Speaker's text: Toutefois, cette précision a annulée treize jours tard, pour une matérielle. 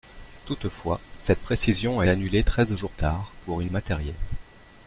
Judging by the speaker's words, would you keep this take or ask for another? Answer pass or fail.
pass